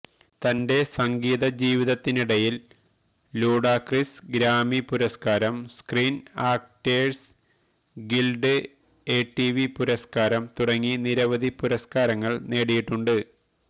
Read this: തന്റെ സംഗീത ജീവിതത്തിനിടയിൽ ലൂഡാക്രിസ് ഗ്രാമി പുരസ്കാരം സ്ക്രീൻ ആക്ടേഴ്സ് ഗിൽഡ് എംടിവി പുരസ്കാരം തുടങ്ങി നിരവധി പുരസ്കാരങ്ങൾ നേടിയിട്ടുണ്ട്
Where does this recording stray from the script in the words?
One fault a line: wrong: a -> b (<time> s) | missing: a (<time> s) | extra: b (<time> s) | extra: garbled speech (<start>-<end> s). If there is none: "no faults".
no faults